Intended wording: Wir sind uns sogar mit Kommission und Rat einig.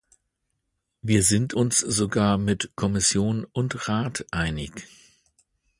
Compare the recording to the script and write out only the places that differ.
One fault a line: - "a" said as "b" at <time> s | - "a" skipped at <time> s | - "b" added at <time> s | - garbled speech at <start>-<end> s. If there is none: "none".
none